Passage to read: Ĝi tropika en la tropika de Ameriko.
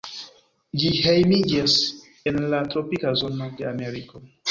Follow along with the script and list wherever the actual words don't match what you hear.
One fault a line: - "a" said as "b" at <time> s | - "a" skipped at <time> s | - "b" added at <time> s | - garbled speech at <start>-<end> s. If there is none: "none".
- "tropika" said as "hejmiĝas" at 1.0 s
- "zono" added at 3.3 s